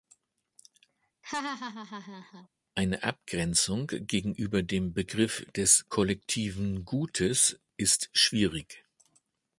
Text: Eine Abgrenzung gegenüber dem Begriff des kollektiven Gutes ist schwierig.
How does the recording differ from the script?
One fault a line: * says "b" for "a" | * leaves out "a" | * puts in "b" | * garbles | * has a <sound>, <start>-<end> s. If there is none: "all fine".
* has a laugh, 1.2-2.5 s